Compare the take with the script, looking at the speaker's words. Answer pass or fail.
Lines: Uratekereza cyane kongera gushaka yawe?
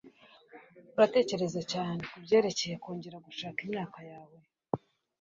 fail